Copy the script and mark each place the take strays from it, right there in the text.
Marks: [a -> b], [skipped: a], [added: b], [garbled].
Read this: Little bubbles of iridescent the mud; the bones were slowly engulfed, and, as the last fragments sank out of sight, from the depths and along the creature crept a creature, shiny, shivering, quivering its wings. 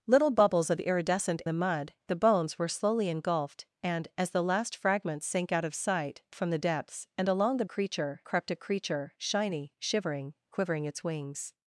Little bubbles of iridescent the mud; the bones were slowly engulfed, and, as the last fragments sank out of sight, from the depths and along the creature crept a creature, shiny, shivering, quivering its wings.